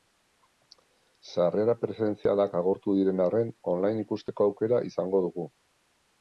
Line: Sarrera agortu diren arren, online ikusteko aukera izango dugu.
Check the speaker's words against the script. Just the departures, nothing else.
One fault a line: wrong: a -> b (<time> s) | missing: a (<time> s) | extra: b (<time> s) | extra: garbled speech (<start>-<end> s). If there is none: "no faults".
extra: presentzialak (1.8 s)